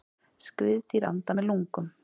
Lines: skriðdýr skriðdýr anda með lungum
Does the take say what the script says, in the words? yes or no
no